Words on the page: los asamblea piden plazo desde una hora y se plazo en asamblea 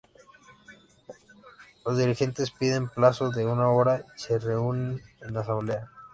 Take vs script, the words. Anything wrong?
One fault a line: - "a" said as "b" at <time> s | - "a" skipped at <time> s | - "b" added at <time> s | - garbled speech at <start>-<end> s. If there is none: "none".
- "asamblea" said as "dirigentes" at 1.9 s
- "desde" said as "de" at 3.3 s
- "plazo" said as "reúnen" at 4.4 s